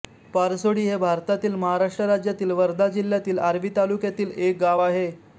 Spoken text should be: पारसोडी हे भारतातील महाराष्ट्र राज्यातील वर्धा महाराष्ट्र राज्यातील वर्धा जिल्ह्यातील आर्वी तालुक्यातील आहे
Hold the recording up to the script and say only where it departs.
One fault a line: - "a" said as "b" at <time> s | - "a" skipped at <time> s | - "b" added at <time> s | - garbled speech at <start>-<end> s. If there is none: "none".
- "महाराष्ट्र राज्यातील वर्धा" skipped at 2.9 s
- "एक गाव" added at 4.4 s